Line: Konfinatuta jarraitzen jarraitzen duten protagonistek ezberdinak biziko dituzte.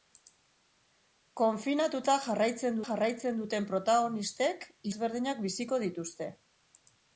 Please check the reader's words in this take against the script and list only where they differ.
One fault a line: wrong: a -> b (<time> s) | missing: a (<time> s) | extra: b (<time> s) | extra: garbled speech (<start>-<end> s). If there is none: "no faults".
no faults